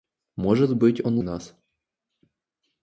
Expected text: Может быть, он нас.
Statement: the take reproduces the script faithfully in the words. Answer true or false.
true